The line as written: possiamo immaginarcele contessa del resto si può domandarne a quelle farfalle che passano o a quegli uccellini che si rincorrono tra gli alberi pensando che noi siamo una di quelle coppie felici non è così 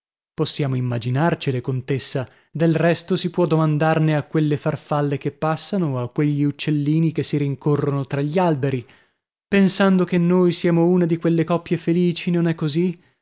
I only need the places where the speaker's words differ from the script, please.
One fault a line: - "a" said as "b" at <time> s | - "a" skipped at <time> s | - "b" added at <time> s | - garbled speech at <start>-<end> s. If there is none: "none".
none